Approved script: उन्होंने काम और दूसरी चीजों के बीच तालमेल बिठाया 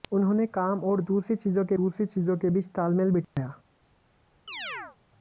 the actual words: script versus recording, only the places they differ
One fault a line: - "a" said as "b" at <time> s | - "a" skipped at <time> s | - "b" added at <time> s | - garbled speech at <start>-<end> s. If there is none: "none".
- "दूसरी चीजों के" added at 1.7 s